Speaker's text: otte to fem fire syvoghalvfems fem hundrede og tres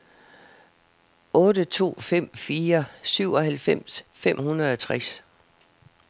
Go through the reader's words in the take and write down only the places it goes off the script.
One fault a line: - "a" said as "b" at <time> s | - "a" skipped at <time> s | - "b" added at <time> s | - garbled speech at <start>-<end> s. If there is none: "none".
none